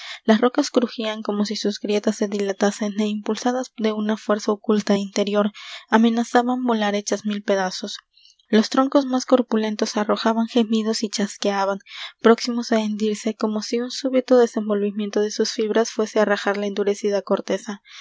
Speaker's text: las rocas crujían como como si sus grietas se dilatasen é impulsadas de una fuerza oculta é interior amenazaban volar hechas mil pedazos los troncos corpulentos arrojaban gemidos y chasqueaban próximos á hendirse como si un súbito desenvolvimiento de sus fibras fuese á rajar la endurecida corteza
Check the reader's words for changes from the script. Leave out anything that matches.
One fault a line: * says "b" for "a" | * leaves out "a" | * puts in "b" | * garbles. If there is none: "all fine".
* leaves out "como"
* puts in "más"